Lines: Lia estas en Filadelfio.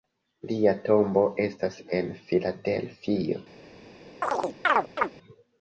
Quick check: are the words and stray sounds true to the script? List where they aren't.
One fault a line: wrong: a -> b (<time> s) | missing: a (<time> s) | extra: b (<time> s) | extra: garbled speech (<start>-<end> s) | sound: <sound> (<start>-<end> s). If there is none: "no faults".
extra: tombo (0.8 s)
sound: chirp (4.2-5.1 s)